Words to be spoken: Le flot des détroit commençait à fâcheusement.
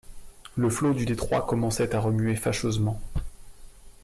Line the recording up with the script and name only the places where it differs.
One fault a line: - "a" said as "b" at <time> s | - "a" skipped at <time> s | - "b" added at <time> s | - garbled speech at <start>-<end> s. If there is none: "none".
- "des" said as "du" at 0.9 s
- "remuer" added at 2.0 s